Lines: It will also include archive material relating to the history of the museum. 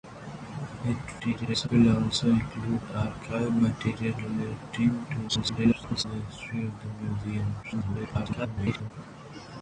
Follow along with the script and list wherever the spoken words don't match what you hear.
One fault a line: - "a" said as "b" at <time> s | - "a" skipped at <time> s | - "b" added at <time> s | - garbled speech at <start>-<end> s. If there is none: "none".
- garbled speech at 1.2-1.7 s
- garbled speech at 5.3-6.0 s
- garbled speech at 7.6-8.9 s